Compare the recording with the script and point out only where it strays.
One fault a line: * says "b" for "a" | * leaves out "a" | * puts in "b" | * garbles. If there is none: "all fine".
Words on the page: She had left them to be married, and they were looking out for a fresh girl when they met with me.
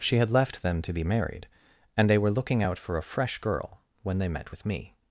all fine